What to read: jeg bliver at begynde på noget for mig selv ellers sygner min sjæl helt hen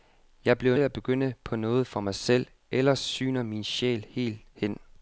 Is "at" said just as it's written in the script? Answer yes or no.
yes